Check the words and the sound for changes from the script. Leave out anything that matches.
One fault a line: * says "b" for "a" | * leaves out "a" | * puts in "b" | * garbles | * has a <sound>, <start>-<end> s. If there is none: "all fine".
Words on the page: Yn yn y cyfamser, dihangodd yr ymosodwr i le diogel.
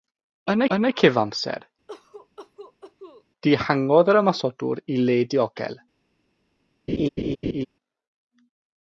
* has a cough, 1.9-3.2 s
* has a laugh, 6.9-7.7 s